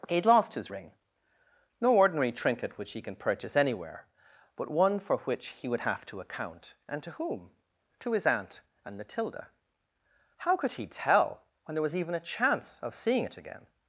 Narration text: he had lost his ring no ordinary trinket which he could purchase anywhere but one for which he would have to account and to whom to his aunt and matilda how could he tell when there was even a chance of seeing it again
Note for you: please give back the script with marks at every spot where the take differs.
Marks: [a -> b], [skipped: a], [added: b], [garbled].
he had lost his ring no ordinary trinket which he [could -> can] purchase anywhere but one for which he would have to account and to whom to his aunt and matilda how could he tell when there was even a chance of seeing it again